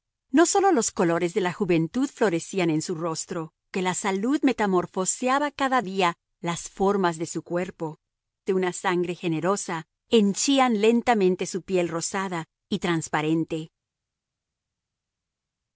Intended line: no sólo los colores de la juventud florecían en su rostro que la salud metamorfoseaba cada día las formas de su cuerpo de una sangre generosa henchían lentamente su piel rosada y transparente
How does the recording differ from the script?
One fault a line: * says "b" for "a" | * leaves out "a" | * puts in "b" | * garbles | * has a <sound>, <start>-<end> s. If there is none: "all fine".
all fine